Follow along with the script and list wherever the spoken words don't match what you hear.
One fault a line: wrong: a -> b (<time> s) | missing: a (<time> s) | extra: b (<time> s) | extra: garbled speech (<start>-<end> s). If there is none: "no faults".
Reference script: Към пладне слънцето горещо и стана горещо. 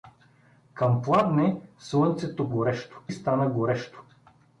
no faults